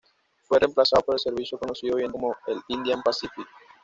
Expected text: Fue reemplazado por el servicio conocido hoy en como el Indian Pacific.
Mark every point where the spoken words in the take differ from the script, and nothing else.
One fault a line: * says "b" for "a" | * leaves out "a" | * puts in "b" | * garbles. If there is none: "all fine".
all fine